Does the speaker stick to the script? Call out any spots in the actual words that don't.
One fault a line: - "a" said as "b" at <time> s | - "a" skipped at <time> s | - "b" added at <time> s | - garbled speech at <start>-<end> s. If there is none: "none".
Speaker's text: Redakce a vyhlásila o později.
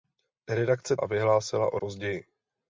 none